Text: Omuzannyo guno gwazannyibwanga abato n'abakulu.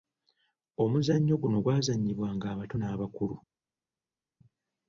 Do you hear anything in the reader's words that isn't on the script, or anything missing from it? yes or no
no